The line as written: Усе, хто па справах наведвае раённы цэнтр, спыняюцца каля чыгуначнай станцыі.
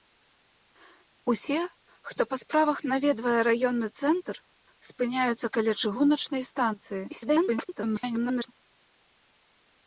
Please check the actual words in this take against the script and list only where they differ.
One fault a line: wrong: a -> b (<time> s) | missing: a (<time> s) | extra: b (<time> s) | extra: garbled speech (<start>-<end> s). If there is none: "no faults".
extra: garbled speech (7.1-8.5 s)